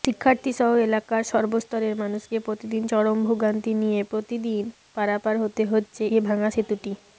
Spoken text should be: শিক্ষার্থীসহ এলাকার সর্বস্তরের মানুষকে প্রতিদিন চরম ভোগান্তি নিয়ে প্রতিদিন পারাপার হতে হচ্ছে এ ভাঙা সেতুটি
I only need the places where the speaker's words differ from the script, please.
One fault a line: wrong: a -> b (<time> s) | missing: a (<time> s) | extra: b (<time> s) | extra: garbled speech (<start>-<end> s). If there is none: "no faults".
no faults